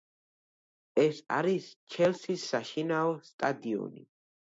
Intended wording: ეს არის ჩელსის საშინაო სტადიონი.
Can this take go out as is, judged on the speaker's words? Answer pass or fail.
pass